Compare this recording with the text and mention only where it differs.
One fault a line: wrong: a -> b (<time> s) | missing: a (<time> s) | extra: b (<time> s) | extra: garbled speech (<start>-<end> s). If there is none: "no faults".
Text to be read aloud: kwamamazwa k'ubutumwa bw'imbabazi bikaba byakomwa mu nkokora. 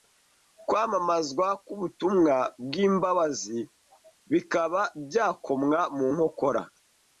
no faults